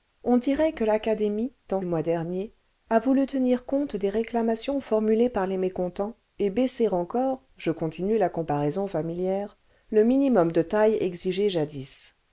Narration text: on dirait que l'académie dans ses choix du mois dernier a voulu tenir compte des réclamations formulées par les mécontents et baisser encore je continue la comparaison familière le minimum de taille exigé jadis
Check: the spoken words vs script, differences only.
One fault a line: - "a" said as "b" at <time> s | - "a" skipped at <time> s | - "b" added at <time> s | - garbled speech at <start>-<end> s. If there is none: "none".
- "ses choix du" skipped at 1.8 s